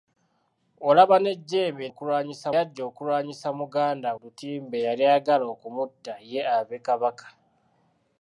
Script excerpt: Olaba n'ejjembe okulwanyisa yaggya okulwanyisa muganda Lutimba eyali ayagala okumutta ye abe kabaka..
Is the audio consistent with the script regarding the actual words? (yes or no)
yes